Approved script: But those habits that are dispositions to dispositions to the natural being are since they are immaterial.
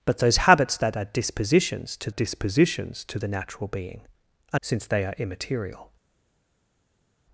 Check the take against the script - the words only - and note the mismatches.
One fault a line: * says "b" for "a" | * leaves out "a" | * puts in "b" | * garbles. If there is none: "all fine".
all fine